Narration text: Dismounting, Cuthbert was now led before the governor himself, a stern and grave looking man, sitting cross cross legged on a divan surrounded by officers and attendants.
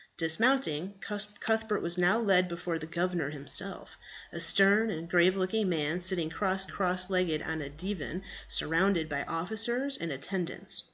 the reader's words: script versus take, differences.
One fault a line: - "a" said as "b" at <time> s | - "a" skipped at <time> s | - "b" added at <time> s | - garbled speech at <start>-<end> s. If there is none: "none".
none